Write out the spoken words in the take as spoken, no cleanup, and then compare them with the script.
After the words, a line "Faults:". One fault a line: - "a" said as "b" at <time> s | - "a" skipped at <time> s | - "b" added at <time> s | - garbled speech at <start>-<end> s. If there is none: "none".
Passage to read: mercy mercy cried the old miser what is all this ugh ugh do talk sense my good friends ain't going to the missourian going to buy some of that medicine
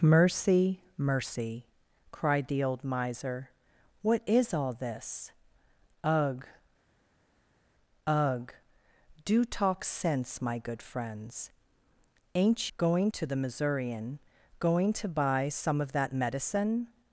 mercy mercy cried the old miser what is all this ugh ugh do talk sense my good friends ain't going to the missourian going to buy some of that medicine
Faults:
none